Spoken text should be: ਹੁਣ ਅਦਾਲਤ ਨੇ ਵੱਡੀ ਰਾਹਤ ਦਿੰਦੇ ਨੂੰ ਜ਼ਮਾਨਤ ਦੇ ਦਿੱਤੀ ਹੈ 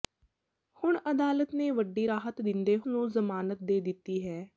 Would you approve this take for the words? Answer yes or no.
yes